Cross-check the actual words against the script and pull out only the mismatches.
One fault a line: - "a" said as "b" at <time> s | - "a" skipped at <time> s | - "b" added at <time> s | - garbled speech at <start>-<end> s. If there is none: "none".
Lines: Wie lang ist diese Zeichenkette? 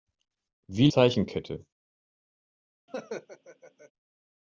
- "lang ist diese" skipped at 0.9 s